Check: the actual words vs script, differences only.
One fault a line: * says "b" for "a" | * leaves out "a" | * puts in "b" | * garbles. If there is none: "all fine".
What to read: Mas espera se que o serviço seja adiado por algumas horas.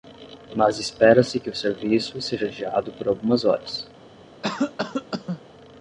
all fine